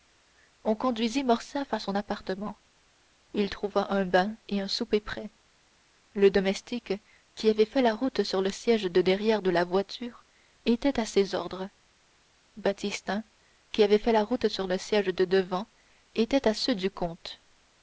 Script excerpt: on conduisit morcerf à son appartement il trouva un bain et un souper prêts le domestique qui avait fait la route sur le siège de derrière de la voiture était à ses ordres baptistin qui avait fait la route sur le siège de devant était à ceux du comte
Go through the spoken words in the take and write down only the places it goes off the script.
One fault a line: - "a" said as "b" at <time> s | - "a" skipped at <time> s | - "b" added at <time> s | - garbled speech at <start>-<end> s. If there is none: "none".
none